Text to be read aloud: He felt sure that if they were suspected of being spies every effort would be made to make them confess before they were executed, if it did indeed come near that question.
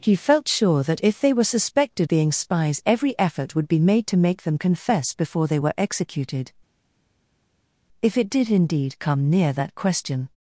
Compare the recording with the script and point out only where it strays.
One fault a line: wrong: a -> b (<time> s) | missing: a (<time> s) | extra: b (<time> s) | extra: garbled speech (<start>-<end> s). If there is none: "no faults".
missing: of (2.1 s)